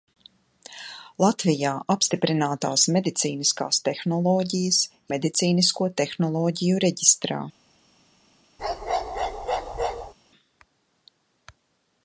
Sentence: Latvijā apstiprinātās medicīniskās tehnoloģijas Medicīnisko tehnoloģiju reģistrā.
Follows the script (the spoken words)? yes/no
yes